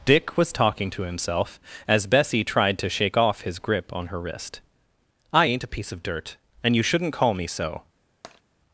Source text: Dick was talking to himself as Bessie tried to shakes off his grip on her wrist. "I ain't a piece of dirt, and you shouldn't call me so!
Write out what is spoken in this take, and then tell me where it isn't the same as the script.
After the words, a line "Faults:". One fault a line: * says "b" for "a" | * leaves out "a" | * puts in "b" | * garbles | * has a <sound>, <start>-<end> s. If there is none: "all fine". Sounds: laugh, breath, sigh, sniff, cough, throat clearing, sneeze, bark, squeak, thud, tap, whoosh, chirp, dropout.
Dick was talking to himself as Bessie tried to shake off his grip on her wrist. "I ain't a piece of dirt, and you shouldn't call me so!
Faults:
* says "shake" for "shakes"
* has a tap, 8.2-8.4 s